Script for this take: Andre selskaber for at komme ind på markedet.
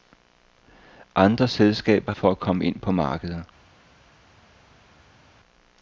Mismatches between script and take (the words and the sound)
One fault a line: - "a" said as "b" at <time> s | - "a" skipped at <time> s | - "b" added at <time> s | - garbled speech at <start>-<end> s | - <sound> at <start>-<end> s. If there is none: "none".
none